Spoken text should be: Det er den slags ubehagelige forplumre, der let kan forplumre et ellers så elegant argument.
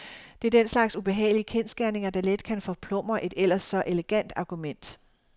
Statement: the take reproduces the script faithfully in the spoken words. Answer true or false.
false